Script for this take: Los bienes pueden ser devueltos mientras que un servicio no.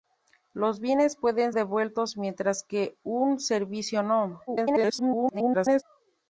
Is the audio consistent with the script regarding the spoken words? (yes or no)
no